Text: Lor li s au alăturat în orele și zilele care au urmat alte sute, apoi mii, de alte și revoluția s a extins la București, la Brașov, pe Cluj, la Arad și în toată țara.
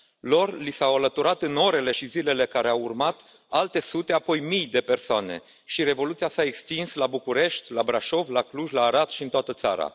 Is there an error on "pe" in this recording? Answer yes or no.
yes